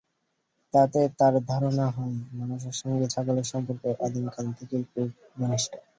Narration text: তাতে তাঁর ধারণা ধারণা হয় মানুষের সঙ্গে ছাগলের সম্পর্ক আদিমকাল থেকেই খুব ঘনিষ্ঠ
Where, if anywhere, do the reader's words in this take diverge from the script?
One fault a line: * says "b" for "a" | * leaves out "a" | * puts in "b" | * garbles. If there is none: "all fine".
* leaves out "ধারণা"